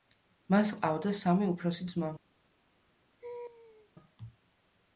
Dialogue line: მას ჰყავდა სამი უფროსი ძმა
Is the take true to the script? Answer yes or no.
yes